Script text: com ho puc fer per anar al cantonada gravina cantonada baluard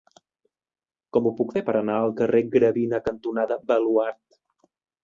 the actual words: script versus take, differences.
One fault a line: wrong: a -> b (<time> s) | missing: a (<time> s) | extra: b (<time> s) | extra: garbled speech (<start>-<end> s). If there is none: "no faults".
wrong: cantonada -> carrer (2.2 s)